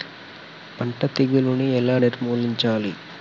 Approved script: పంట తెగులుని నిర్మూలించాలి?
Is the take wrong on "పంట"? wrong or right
right